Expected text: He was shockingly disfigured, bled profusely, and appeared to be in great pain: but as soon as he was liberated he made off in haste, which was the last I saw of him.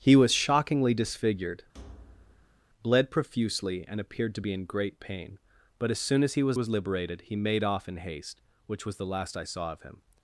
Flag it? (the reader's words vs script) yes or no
yes